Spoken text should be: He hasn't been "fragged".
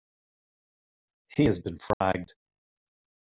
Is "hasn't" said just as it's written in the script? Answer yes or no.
no